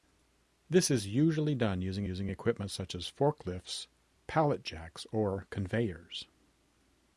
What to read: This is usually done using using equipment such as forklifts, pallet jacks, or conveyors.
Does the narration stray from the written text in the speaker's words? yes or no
no